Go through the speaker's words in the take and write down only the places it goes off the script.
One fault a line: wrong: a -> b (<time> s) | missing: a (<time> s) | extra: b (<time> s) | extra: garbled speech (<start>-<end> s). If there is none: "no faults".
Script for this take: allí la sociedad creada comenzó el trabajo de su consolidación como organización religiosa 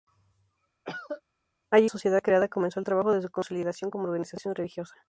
missing: la (1.9 s)